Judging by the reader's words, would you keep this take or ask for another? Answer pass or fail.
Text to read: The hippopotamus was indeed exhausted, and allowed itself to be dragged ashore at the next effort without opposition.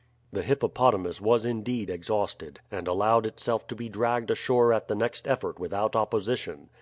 pass